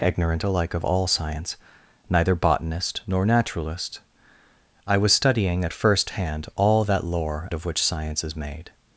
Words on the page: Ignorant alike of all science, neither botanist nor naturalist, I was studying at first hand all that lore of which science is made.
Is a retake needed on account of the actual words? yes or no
no